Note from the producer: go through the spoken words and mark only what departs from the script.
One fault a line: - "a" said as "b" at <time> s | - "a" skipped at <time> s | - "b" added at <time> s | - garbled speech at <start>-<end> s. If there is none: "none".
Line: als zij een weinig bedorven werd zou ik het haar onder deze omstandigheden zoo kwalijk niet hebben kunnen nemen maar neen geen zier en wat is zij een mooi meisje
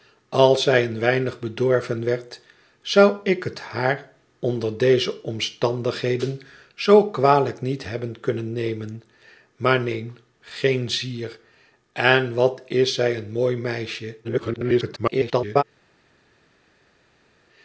- garbled speech at 14.2-15.6 s